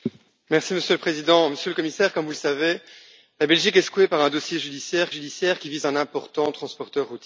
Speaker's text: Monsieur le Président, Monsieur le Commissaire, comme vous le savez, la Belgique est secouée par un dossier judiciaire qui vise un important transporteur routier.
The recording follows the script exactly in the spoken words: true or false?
false